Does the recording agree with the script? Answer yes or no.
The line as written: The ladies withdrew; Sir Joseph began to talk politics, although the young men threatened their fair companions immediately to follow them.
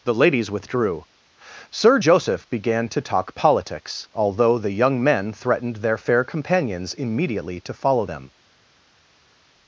yes